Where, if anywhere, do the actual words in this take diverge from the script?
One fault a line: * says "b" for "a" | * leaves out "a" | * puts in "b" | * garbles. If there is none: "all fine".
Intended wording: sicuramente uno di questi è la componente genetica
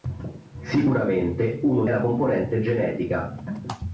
* leaves out "di questi è"